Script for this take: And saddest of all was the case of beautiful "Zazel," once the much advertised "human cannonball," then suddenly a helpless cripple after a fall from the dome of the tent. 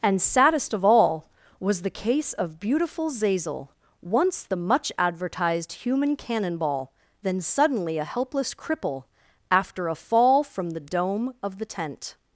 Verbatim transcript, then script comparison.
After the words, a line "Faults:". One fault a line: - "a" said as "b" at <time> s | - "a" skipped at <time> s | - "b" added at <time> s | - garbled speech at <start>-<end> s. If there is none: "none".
And saddest of all was the case of beautiful "Zazel," once the much advertised "human cannonball," then suddenly a helpless cripple after a fall from the dome of the tent.
Faults:
none